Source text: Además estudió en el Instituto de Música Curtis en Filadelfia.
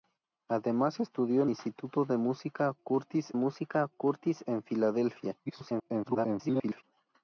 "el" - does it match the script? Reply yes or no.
no